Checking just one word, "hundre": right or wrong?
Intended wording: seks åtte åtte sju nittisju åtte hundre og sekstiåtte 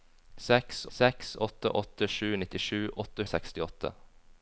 wrong